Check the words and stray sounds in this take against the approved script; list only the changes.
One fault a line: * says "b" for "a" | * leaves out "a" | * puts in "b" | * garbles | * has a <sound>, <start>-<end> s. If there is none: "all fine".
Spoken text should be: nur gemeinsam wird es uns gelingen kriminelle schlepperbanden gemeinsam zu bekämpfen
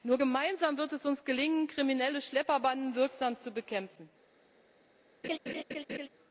* says "wirksam" for "gemeinsam"
* has a laugh, 5.2-6.1 s